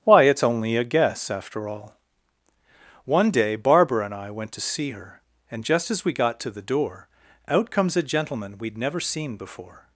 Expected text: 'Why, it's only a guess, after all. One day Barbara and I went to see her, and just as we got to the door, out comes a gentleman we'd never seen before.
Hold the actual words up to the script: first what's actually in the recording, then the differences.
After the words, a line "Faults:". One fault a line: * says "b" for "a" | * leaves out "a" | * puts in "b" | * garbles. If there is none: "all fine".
'Why, it's only a guess, after all. One day Barbara and I went to see her, and just as we got to the door, out comes a gentleman we'd never seen before.
Faults:
all fine